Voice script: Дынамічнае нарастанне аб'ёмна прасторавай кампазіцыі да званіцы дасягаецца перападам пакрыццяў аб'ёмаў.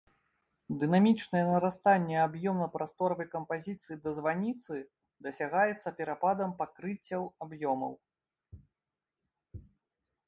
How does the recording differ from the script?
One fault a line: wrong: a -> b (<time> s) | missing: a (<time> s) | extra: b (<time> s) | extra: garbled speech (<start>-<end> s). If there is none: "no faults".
no faults